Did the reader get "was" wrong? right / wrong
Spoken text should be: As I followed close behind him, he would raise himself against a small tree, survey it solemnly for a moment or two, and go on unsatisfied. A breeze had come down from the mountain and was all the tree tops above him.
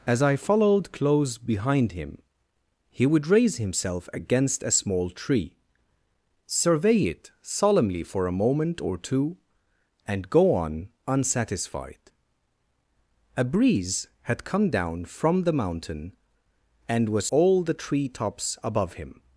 right